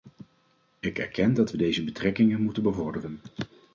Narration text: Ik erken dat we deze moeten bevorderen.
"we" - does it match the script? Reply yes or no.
yes